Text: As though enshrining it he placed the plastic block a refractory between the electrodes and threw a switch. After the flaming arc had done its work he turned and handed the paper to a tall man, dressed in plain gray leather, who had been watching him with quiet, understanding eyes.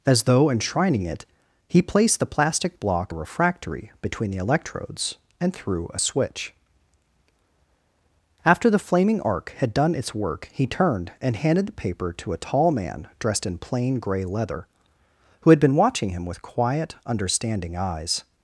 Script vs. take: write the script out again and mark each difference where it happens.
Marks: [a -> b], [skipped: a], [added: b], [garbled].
As though enshrining it he placed the plastic block a refractory between the electrodes and threw a switch. After the flaming arc had done its work he turned and handed the paper to a tall man, dressed in plain gray leather, who had been watching him with quiet, understanding eyes.